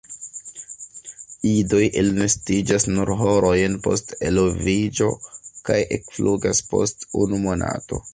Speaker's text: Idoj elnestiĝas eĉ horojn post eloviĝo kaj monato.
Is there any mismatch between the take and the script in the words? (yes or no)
yes